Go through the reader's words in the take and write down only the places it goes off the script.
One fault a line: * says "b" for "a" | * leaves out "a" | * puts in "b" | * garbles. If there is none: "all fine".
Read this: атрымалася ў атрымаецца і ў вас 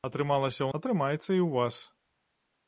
all fine